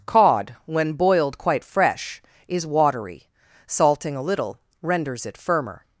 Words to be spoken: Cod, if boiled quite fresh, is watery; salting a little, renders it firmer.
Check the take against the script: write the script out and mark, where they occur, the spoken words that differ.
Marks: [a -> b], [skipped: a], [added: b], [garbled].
Cod, [if -> when] boiled quite fresh, is watery; salting a little, renders it firmer.